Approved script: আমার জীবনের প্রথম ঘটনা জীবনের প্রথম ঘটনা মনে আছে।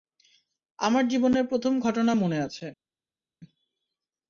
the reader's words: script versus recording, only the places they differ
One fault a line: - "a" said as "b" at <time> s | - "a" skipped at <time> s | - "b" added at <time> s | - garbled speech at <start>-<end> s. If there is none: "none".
- "জীবনের প্রথম ঘটনা" skipped at 2.1 s